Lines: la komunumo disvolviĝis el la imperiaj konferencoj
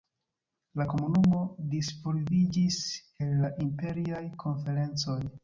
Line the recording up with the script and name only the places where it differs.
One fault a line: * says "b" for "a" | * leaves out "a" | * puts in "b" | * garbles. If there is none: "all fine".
all fine